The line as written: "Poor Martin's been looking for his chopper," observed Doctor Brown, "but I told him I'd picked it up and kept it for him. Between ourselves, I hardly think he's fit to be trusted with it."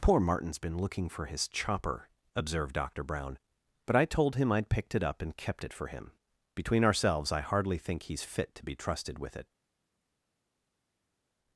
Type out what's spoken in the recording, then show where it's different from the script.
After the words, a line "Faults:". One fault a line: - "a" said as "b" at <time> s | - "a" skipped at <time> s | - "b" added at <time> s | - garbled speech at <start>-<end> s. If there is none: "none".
"Poor Martin's been looking for his chopper," observed Doctor Brown, "but I told him I'd picked it up and kept it for him. Between ourselves, I hardly think he's fit to be trusted with it."
Faults:
none